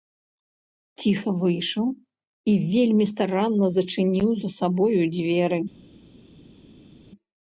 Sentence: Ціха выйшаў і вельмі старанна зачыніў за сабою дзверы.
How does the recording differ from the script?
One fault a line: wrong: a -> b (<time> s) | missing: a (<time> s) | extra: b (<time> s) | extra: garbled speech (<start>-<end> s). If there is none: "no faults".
no faults